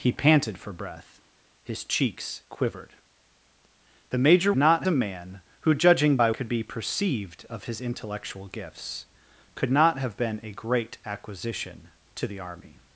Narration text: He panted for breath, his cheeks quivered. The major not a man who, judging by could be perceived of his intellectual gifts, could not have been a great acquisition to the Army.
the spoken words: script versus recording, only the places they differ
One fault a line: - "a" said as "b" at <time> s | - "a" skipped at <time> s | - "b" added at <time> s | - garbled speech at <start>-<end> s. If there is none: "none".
none